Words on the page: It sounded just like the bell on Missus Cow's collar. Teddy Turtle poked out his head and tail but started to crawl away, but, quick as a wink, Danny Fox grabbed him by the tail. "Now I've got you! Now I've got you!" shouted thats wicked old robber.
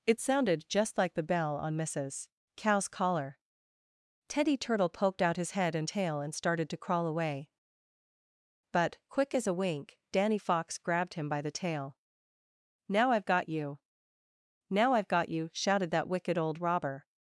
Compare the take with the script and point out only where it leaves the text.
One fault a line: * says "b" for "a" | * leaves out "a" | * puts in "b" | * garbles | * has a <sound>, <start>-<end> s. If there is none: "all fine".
* says "and" for "but"
* says "that" for "thats"